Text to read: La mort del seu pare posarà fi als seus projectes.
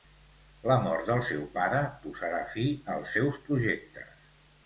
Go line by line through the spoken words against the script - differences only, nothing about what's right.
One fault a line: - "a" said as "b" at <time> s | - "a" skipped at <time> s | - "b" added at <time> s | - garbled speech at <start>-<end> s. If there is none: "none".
none